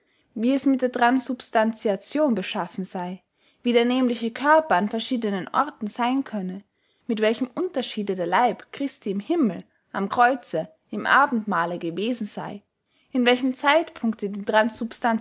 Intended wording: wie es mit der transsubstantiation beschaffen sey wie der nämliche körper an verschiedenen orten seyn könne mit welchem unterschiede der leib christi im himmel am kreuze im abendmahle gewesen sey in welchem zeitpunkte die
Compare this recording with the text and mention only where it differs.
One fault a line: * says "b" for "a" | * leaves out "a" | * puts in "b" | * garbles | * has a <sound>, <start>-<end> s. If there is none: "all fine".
all fine